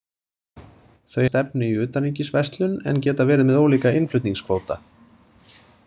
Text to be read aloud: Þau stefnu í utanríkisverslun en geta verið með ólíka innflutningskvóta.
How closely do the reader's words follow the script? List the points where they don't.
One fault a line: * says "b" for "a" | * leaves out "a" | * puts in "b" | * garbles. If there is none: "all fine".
all fine